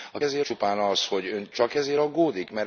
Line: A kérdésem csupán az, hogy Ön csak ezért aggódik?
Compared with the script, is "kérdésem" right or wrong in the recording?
wrong